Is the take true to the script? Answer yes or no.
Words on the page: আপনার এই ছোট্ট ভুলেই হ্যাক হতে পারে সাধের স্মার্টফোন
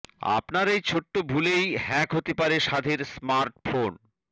yes